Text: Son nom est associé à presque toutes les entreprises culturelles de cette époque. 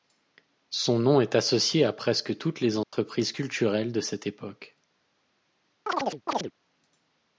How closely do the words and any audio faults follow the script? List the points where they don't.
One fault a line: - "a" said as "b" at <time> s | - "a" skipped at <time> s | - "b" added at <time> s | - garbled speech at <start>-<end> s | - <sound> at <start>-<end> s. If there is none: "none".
- dropout at 2.8-2.9 s
- chirp at 5.9-6.5 s